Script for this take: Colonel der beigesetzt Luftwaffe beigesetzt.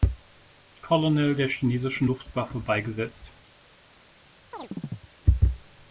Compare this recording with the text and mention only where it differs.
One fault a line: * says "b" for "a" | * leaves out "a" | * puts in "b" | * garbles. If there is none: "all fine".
* says "chinesischen" for "beigesetzt"